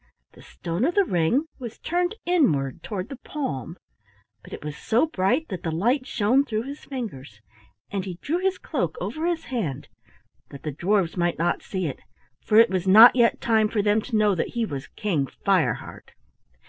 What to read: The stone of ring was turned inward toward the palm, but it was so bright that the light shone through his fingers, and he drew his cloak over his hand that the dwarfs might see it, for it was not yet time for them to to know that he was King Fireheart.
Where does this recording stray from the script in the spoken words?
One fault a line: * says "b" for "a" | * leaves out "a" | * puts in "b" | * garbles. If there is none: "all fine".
* puts in "the"
* puts in "not"
* leaves out "to"